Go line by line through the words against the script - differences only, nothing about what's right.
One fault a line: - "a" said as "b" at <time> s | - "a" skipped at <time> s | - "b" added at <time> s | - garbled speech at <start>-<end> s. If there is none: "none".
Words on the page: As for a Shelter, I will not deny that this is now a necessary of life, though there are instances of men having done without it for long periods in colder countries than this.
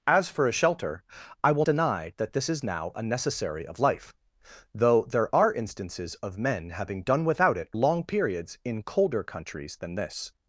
- "not" skipped at 1.6 s
- "for" skipped at 7.8 s